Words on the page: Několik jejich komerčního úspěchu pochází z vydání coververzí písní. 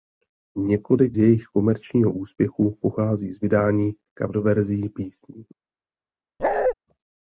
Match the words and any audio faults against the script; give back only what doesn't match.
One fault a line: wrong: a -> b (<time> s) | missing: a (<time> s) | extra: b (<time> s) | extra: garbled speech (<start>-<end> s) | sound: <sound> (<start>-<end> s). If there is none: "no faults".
sound: bark (6.4-6.7 s)